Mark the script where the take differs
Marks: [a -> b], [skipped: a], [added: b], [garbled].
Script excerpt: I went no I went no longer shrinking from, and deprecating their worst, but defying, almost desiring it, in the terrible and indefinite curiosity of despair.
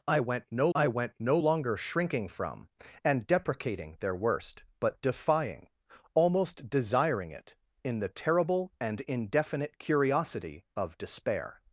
I went no I went no longer shrinking from, and deprecating their worst, but defying, almost desiring it, in the terrible and indefinite curiosity of despair.